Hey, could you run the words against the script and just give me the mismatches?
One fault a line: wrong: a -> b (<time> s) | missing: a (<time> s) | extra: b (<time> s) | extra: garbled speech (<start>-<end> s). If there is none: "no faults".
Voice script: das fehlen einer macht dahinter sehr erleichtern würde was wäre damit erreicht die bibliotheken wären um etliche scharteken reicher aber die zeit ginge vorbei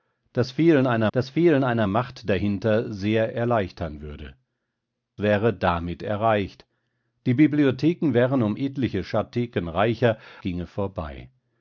extra: das fehlen einer (1.1 s)
missing: was (4.4 s)
missing: aber die zeit (10.2 s)